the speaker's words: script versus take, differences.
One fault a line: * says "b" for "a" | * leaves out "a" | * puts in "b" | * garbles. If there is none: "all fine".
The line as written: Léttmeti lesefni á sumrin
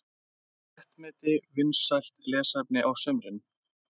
* puts in "vinsælt"